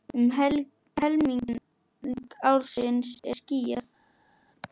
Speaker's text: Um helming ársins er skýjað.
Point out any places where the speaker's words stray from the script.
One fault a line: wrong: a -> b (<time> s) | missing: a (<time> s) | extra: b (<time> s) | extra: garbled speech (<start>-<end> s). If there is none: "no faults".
no faults